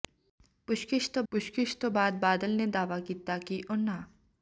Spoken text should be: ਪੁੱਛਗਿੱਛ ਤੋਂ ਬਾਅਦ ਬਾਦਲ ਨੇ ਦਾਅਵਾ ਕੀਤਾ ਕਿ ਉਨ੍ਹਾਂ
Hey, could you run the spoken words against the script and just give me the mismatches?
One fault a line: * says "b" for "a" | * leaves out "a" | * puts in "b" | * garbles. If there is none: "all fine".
* puts in "ਪੁੱਛਗਿੱਛ ਤੋਂ"